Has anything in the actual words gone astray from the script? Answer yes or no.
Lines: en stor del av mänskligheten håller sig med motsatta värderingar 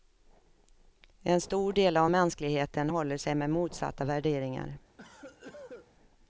no